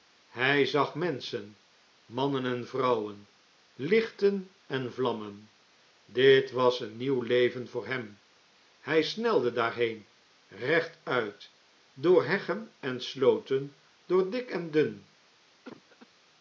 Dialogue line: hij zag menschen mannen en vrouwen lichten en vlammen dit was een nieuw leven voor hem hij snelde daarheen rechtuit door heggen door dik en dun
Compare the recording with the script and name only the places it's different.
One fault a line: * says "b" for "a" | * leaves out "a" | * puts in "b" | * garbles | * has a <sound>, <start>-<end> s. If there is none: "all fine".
* puts in "en slooten"
* has a cough, 15.6-16.1 s